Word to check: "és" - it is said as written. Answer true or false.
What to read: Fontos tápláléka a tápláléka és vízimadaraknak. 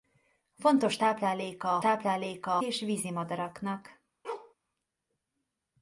true